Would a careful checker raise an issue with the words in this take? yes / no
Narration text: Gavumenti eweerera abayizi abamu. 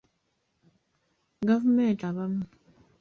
yes